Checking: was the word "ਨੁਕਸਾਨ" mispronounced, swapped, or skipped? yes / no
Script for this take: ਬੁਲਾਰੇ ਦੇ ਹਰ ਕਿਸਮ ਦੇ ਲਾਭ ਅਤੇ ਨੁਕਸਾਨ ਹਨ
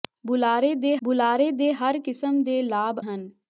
yes